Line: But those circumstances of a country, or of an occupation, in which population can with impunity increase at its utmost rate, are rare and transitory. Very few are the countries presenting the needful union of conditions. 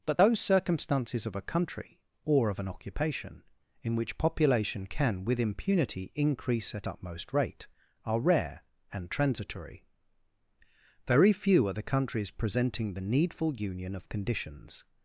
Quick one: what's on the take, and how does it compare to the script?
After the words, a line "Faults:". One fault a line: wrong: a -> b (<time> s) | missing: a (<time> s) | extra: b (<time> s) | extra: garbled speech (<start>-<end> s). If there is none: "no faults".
But those circumstances of a country, or of an occupation, in which population can with impunity increase at utmost rate, are rare and transitory. Very few are the countries presenting the needful union of conditions.
Faults:
missing: its (6.9 s)